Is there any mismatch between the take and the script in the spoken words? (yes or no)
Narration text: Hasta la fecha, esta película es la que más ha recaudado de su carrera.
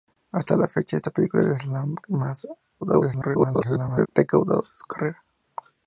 yes